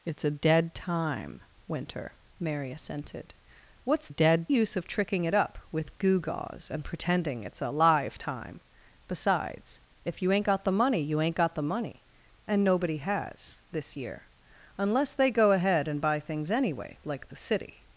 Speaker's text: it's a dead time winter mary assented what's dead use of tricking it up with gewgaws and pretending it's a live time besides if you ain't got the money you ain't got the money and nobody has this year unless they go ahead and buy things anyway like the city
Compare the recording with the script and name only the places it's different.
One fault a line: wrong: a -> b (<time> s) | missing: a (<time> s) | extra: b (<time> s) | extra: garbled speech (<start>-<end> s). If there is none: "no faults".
no faults